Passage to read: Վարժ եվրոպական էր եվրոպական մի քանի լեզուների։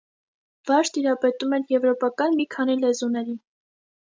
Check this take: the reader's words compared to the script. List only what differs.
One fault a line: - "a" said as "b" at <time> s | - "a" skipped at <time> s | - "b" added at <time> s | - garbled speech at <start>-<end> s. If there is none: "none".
- "եվրոպական" said as "տիրապետում" at 0.9 s